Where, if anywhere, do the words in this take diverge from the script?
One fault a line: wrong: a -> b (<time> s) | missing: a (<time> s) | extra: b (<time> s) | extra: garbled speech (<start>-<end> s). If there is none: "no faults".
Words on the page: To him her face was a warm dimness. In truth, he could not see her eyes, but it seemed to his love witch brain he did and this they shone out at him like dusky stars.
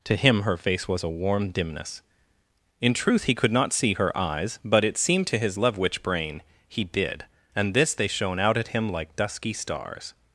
no faults